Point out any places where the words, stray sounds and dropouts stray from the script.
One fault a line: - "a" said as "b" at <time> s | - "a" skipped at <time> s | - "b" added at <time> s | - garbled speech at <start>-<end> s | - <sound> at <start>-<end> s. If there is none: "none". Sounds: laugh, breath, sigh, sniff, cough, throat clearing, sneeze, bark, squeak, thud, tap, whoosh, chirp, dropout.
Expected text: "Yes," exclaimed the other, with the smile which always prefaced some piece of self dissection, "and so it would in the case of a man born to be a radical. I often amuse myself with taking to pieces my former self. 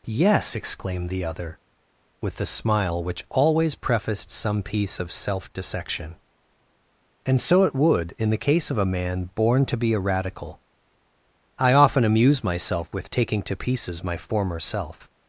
none